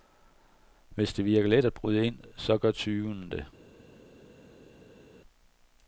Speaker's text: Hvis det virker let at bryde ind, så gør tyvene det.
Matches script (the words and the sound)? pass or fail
pass